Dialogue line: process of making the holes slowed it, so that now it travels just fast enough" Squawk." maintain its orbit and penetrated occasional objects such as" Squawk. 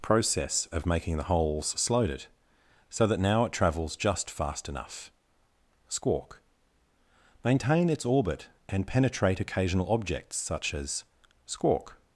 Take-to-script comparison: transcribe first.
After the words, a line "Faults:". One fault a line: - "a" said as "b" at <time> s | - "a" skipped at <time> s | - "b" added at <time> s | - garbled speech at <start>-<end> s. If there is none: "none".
process of making the holes slowed it, so that now it travels just fast enough" Squawk." maintain its orbit and penetrate occasional objects such as" Squawk.
Faults:
- "penetrated" said as "penetrate" at 8.9 s